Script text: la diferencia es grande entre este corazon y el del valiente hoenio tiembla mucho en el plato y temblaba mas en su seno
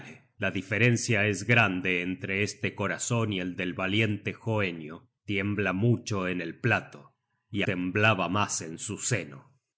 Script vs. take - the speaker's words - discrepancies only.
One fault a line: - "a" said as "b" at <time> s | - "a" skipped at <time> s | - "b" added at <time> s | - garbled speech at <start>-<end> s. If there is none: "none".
none